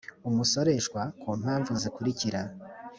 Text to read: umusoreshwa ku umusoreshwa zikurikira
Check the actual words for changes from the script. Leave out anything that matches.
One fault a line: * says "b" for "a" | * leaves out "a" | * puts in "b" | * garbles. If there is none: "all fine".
* says "mpamvu" for "umusoreshwa"